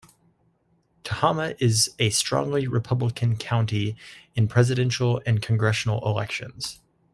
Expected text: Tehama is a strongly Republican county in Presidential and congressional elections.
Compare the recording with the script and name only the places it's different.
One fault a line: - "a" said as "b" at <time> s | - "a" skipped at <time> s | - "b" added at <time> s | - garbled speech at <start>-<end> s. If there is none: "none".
none